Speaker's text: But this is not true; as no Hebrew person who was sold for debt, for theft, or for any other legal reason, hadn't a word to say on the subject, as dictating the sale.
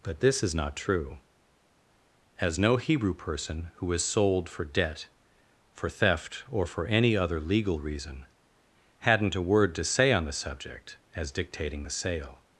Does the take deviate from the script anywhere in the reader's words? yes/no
no